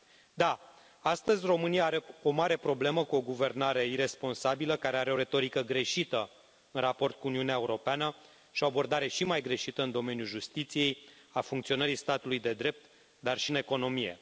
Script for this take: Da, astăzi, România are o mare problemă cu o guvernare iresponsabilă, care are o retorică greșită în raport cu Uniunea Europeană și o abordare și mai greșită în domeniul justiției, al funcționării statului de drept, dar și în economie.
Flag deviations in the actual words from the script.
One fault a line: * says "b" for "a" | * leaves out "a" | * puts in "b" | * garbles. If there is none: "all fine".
all fine